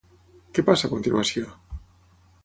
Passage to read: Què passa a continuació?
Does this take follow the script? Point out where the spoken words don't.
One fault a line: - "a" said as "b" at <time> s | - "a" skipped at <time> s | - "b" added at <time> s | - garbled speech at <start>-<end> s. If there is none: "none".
none